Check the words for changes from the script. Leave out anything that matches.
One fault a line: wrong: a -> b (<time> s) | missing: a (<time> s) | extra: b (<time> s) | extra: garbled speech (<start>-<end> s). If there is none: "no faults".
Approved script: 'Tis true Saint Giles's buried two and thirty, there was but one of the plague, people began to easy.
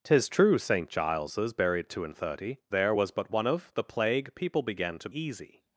no faults